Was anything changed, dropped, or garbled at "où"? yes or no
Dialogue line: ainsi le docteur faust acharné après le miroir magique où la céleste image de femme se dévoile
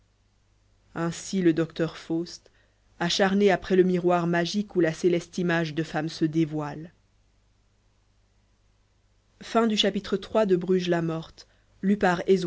no